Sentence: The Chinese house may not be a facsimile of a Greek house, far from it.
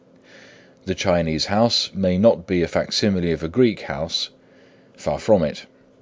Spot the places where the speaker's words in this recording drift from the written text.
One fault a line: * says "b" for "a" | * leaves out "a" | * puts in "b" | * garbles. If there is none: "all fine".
all fine